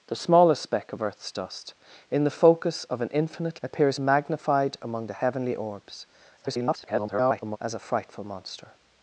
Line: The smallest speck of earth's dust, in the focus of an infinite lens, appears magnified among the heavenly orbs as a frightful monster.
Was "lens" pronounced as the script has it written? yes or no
no